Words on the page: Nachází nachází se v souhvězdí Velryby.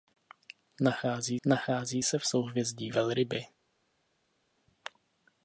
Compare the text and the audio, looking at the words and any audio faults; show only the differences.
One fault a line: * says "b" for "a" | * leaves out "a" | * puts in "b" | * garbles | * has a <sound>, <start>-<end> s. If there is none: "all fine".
all fine